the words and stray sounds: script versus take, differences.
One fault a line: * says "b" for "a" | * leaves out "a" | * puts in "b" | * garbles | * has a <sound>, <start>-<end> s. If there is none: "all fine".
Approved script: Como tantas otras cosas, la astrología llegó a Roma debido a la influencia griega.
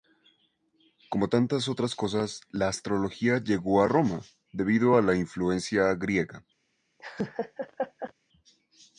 * has a laugh, 7.0-8.1 s